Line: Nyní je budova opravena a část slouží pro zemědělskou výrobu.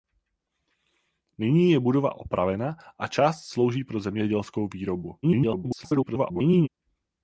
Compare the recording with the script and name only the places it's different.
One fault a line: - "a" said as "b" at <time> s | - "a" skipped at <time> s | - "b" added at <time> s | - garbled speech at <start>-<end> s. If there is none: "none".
- garbled speech at 5.2-6.7 s